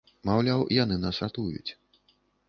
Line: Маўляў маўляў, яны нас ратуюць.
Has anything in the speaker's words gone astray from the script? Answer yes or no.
yes